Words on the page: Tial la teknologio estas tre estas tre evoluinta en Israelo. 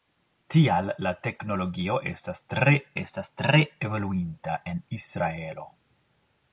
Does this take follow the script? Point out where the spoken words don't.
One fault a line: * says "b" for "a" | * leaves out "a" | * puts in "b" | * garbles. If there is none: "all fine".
all fine